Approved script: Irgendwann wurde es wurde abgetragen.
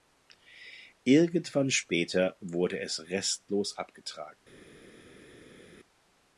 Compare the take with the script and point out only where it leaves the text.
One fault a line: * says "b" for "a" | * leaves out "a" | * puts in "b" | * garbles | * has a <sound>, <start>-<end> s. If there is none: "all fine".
* puts in "später"
* says "restlos" for "wurde"